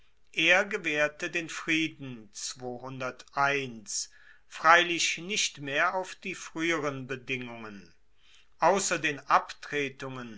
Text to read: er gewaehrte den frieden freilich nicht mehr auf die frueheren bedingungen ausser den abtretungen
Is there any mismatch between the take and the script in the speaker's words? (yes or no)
no